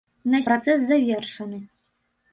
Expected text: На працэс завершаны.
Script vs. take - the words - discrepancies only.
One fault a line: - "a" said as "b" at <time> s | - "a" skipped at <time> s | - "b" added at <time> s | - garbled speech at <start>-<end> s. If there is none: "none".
none